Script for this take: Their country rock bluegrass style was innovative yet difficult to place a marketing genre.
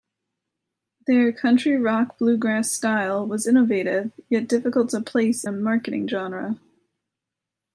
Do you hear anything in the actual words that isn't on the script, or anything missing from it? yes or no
no